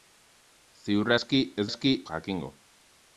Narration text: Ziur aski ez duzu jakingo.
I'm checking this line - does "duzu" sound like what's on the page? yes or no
no